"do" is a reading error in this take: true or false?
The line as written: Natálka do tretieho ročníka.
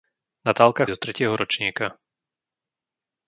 false